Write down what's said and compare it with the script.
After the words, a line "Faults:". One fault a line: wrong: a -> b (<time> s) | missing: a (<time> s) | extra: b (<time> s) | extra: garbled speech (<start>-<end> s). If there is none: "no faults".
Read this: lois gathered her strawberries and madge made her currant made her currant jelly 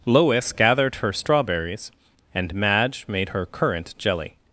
lois gathered her strawberries and madge made her currant jelly
Faults:
missing: made her currant (3.9 s)